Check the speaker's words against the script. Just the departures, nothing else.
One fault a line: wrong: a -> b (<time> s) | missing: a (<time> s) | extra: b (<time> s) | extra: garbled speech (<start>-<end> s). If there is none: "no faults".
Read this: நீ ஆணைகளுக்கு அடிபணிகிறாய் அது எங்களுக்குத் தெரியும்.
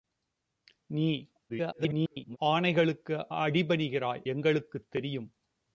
extra: garbled speech (1.5-2.4 s)
missing: அது (4.2 s)